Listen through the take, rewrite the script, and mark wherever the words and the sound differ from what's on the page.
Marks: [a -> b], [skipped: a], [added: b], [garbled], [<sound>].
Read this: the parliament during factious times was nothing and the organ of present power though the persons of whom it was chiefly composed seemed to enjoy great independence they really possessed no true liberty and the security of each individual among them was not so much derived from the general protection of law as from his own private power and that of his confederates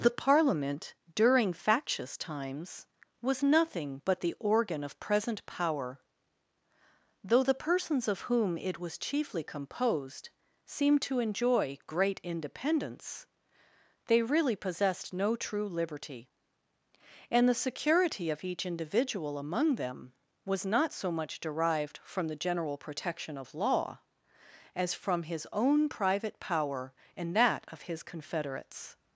the parliament during factious times was nothing [and -> but] the organ of present power though the persons of whom it was chiefly composed seemed to enjoy great independence they really possessed no true liberty and the security of each individual among them was not so much derived from the general protection of law as from his own private power and that of his confederates